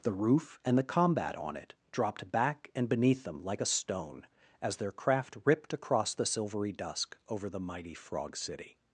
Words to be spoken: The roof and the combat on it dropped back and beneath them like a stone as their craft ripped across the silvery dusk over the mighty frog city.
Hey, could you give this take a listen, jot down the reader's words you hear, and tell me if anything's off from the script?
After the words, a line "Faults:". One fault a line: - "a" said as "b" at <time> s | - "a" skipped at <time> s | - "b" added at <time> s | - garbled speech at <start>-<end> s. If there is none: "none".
The roof and the combat on it dropped back and beneath them like a stone as their craft ripped across the silvery dusk over the mighty frog city.
Faults:
none